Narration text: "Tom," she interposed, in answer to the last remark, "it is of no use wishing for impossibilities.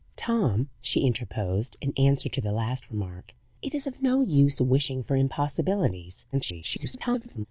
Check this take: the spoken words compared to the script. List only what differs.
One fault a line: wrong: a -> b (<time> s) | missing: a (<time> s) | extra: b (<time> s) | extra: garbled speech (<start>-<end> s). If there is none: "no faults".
extra: garbled speech (6.3-7.5 s)